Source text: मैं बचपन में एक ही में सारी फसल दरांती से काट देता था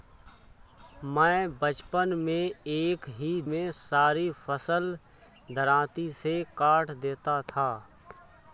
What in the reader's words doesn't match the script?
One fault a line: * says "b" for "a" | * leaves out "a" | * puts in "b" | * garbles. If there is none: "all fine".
all fine